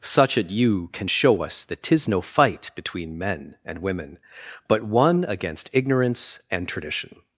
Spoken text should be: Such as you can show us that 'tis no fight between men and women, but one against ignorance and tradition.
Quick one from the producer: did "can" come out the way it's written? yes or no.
yes